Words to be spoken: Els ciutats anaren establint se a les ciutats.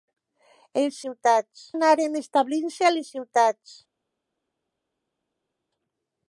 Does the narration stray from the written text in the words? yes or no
no